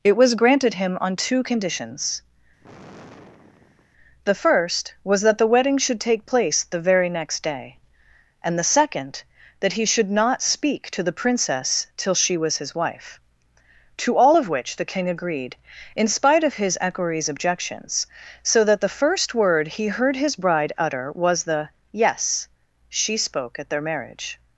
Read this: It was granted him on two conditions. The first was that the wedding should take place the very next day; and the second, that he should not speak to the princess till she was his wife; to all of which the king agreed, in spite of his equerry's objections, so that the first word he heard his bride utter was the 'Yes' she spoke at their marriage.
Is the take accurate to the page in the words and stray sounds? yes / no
no